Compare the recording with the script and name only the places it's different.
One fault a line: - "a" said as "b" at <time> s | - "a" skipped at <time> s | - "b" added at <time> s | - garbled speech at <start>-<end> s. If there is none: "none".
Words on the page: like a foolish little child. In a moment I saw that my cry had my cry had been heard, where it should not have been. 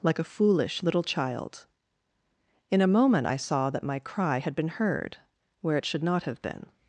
- "my cry had" skipped at 4.5 s